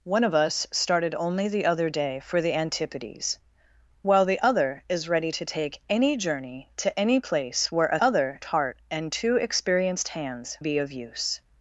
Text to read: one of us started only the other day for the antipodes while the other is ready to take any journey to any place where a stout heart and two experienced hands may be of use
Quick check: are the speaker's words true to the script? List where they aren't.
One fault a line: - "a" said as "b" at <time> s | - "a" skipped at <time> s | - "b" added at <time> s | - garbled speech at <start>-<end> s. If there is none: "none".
- "stout" said as "other" at 8.0 s
- "may" skipped at 10.6 s